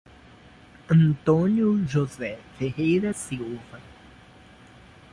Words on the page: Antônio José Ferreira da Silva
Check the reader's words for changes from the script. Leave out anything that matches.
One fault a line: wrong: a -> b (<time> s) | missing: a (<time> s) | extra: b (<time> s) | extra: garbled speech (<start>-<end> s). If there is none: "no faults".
missing: da (3.1 s)